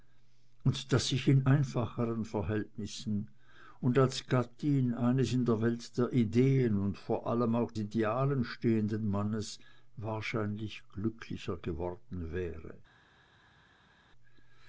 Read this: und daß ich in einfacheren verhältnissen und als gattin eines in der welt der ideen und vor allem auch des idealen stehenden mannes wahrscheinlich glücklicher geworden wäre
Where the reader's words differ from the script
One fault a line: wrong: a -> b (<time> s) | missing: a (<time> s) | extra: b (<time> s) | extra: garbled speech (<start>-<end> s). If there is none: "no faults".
missing: des (7.7 s)